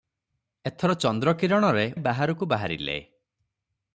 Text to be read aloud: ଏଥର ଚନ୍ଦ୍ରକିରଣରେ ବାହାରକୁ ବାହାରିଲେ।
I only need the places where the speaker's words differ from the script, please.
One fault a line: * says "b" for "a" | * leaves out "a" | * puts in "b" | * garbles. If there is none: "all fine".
all fine